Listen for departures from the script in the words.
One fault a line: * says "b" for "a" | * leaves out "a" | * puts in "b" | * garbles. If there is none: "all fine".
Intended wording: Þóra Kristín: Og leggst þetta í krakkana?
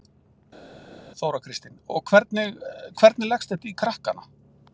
* puts in "hvernig hvernig"